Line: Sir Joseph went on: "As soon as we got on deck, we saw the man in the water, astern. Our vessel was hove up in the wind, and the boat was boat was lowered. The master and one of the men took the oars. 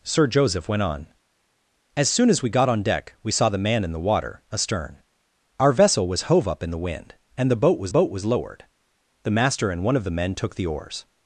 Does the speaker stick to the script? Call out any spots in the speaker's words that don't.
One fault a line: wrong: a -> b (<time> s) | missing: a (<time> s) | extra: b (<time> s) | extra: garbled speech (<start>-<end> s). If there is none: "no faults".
no faults